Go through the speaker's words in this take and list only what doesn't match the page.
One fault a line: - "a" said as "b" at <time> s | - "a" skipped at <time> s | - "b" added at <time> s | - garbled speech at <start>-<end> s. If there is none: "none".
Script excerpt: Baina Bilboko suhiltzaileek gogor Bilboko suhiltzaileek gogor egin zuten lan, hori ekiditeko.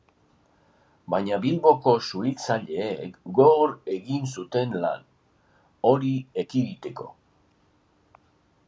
- "Bilboko suhiltzaileek gogor" skipped at 3.8 s